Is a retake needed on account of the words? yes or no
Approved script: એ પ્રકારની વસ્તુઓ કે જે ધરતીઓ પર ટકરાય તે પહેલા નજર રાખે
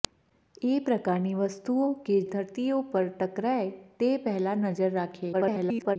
yes